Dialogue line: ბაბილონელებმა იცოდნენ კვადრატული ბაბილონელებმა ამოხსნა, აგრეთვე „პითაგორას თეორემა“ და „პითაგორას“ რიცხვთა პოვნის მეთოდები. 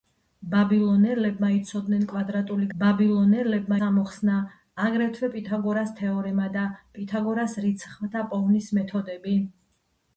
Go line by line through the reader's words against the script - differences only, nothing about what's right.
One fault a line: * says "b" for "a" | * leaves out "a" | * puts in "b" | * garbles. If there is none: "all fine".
all fine